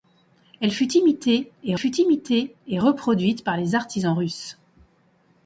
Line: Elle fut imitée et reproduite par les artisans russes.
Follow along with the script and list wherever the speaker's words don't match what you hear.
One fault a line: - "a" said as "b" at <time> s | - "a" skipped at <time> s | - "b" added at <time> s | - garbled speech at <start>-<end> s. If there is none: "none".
- "fut imitée et" added at 1.7 s